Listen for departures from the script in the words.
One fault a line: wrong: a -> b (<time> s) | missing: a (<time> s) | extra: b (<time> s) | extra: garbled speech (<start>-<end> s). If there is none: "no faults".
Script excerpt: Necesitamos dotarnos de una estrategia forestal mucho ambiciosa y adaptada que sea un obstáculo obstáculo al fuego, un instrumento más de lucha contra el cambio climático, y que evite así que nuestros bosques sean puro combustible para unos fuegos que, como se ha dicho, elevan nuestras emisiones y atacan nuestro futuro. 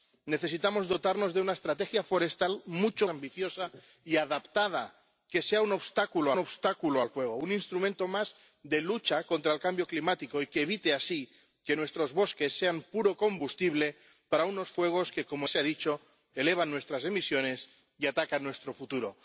no faults